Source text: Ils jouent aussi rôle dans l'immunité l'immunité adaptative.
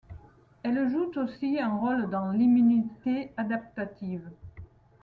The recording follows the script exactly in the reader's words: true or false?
false